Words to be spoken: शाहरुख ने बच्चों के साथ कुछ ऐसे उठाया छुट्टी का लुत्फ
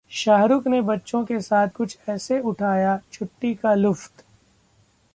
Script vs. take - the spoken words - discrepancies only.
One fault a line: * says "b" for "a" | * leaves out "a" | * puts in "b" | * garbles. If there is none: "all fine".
all fine